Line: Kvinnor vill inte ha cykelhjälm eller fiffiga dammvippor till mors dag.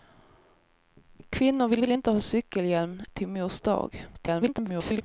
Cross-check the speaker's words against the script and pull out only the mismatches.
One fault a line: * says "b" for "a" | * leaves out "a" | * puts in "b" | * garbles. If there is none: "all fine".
* puts in "vill"
* leaves out "eller fiffiga dammvippor"
* garbles